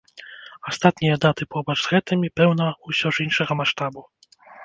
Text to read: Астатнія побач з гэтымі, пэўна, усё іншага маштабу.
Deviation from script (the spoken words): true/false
true